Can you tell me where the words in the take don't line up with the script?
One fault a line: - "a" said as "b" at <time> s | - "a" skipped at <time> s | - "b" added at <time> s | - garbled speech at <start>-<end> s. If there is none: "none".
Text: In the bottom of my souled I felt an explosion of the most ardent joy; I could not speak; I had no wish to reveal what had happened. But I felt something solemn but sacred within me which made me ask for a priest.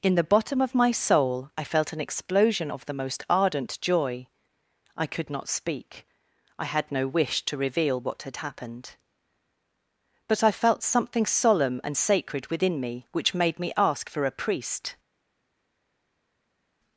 - "souled" said as "soul" at 0.9 s
- "but" said as "and" at 11.8 s